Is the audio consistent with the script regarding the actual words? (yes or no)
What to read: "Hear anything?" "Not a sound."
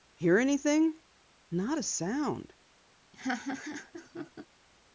yes